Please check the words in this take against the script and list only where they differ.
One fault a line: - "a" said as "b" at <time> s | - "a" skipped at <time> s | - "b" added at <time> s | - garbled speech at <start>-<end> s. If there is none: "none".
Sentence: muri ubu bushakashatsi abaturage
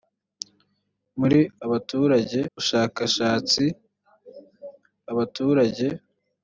- "ubu" said as "abaturage" at 1.6 s